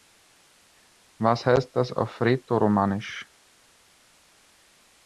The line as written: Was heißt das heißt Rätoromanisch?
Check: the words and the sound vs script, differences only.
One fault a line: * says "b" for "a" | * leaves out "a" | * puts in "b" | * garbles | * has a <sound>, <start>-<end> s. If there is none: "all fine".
* says "auf" for "heißt"